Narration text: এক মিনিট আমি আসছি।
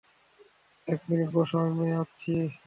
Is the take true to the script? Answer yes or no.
no